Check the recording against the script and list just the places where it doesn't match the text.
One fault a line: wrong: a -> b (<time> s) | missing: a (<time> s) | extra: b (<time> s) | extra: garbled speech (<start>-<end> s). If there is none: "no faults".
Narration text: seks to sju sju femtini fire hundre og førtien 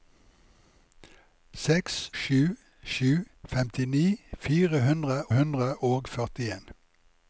missing: to (2.0 s)
extra: hundre (5.4 s)